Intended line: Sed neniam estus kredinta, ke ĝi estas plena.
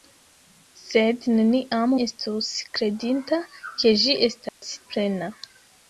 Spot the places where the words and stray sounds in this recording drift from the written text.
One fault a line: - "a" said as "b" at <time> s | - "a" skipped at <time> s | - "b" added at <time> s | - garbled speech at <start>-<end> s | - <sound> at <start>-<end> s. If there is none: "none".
- dropout at 4.5-4.6 s